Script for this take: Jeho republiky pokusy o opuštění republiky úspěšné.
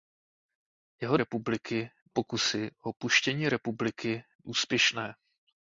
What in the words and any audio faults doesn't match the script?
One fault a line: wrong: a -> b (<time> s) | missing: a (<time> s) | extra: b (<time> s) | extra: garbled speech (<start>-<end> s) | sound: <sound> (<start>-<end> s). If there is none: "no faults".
no faults